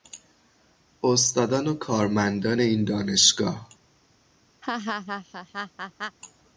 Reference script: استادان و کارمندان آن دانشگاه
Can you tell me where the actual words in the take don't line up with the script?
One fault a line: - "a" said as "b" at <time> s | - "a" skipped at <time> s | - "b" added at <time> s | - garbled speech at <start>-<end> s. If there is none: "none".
- "آن" said as "این" at 2.6 s